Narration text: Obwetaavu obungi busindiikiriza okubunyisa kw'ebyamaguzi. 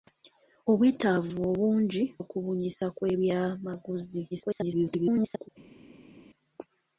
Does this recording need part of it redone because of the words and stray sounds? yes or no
yes